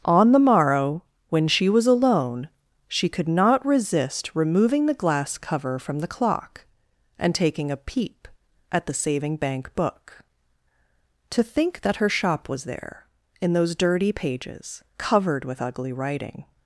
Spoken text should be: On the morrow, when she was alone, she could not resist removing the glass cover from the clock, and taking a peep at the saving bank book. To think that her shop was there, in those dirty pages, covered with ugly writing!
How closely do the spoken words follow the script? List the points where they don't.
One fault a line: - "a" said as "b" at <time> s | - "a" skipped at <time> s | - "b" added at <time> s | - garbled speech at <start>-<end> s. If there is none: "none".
none